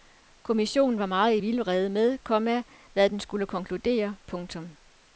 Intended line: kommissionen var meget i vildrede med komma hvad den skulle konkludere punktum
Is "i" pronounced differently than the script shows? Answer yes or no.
no